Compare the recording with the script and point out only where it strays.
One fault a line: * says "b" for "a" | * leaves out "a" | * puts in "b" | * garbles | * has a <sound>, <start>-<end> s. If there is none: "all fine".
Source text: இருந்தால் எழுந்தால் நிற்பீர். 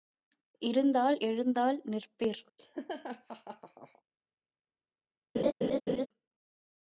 * has a laugh, 2.6-4.0 s
* has a laugh, 5.3-6.1 s